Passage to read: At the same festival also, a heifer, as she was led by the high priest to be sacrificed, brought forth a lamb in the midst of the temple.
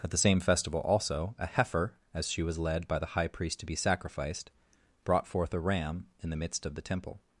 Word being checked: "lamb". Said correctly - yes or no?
no